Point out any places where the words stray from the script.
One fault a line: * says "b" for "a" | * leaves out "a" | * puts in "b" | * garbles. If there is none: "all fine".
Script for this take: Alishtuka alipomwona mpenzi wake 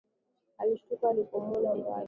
* leaves out "mpenzi"